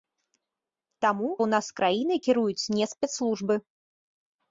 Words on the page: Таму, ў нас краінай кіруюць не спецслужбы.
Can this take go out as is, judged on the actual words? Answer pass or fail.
pass